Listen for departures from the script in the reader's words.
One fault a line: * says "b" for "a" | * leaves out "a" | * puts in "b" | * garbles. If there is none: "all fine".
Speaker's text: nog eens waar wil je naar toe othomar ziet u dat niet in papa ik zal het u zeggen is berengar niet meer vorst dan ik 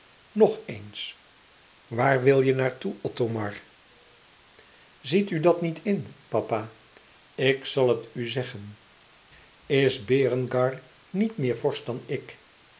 all fine